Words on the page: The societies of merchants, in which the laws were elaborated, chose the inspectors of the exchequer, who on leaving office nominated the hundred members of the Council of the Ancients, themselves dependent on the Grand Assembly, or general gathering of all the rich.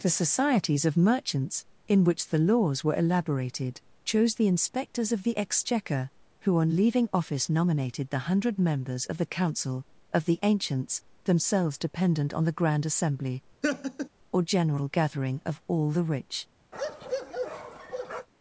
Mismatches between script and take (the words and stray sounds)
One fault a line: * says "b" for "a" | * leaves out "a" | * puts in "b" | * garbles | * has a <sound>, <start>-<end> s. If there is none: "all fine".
* has a laugh, 13.6-14.1 s
* has a bark, 16.7-18.3 s